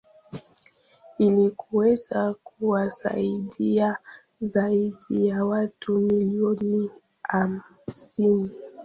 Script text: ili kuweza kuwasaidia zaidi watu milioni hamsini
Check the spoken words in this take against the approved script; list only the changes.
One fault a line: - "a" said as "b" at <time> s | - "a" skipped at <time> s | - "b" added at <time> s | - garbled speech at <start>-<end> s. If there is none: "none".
- "ya" added at 5.3 s